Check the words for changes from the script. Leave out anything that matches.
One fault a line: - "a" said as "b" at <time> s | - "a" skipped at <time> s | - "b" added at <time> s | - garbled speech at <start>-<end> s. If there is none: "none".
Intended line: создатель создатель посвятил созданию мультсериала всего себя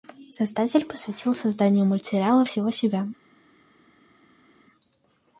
- "создатель" skipped at 0.8 s